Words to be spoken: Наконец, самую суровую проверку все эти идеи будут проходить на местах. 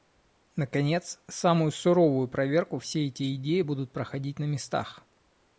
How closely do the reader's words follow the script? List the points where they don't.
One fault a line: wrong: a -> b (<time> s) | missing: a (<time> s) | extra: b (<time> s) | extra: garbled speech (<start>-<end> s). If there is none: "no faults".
no faults